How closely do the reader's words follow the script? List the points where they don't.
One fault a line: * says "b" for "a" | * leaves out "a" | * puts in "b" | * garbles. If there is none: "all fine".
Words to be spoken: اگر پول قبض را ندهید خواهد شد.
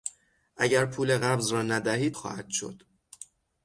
all fine